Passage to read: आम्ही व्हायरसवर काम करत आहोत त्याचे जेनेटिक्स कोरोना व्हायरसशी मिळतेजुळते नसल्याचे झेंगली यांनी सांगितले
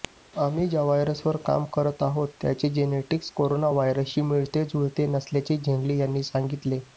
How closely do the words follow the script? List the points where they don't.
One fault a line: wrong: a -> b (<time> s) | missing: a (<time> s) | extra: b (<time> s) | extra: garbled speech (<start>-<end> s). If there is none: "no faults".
extra: ज्या (0.7 s)